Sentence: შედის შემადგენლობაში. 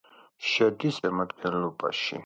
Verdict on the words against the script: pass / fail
pass